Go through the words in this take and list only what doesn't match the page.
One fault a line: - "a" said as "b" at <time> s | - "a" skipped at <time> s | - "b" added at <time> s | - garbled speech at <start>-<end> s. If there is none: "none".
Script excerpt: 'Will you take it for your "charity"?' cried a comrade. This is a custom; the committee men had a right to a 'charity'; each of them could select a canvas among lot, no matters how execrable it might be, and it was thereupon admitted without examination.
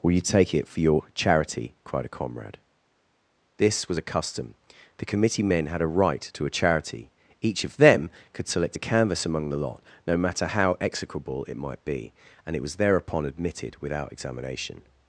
- "is" said as "was" at 3.9 s
- "the" added at 9.5 s
- "matters" said as "matter" at 10.2 s